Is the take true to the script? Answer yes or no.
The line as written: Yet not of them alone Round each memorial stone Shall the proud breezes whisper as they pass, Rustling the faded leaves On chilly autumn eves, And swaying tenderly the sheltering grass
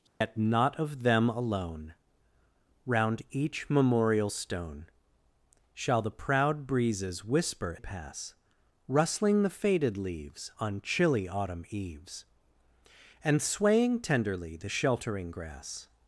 no